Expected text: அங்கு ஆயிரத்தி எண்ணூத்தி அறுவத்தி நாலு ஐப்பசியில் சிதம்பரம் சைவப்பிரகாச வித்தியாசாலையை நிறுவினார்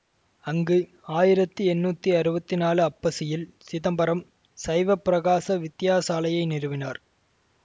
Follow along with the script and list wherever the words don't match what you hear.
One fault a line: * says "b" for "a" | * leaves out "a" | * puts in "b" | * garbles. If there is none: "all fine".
all fine